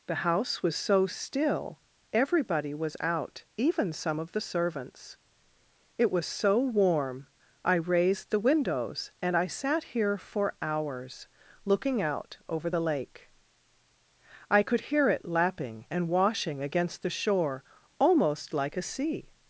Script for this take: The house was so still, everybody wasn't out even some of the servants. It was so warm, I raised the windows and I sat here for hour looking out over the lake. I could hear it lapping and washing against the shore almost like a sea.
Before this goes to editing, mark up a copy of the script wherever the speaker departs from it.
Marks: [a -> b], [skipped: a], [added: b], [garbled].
The house was so still, everybody [wasn't -> was] out even some of the servants. It was so warm, I raised the windows and I sat here for [hour -> hours] looking out over the lake. I could hear it lapping and washing against the shore almost like a sea.